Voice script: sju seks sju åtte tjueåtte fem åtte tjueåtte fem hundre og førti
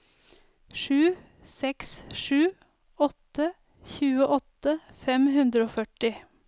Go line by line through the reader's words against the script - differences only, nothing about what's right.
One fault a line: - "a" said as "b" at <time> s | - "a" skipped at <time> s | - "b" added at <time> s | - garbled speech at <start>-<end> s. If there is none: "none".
- "åtte tjueåtte fem" skipped at 5.3 s